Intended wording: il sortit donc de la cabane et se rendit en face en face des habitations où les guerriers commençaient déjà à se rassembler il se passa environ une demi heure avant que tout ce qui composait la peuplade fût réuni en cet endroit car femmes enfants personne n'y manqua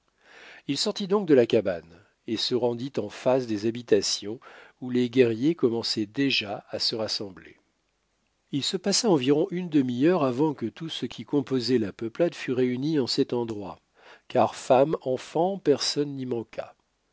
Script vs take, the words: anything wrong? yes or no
yes